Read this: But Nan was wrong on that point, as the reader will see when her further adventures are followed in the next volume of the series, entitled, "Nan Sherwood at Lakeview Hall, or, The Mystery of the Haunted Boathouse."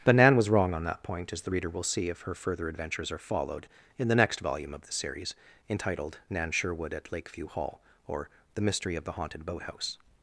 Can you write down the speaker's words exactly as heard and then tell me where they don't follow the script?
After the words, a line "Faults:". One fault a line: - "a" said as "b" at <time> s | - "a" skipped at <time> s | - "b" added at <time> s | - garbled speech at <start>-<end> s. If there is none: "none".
But Nan was wrong on that point, as the reader will see if her further adventures are followed in the next volume of the series, entitled, "Nan Sherwood at Lakeview Hall, or, The Mystery of the Haunted Boathouse."
Faults:
- "when" said as "if" at 2.1 s